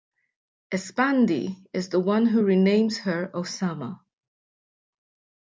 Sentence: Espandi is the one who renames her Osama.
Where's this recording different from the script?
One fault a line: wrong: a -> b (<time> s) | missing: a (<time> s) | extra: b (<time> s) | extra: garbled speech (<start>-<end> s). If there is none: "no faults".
no faults